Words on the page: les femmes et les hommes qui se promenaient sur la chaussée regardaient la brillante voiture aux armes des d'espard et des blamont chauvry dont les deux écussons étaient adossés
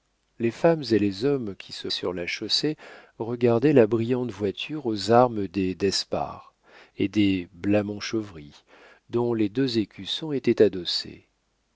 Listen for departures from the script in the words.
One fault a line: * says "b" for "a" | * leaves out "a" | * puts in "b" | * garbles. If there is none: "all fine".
* leaves out "promenaient"